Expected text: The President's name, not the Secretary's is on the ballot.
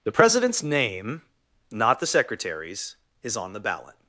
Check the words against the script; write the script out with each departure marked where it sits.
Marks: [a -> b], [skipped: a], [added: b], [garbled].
The President's name, not the Secretary's is on the ballot.